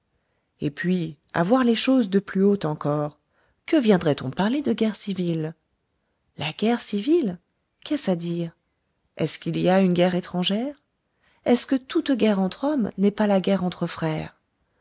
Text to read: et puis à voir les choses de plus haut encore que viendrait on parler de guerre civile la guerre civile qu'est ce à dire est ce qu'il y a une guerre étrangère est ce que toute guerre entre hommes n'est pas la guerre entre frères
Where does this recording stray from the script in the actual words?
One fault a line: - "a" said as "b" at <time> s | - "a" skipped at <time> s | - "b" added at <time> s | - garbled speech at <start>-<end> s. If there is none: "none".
none